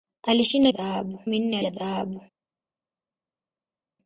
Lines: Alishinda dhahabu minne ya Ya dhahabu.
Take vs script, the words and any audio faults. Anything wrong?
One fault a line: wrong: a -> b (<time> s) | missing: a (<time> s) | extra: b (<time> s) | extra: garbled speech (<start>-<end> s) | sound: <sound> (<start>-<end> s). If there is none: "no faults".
no faults